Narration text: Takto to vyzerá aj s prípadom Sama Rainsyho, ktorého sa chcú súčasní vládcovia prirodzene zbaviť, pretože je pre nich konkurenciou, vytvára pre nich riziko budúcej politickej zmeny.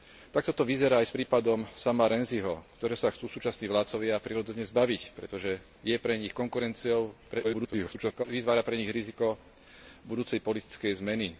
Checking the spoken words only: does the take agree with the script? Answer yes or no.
no